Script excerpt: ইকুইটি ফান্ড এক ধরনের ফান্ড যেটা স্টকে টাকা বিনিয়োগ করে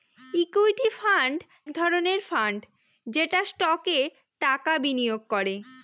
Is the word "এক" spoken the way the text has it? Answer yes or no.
no